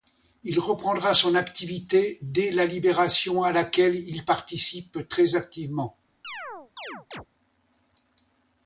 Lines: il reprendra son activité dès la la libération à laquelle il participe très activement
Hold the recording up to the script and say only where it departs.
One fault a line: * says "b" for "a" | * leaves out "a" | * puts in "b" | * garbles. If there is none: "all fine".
* leaves out "la"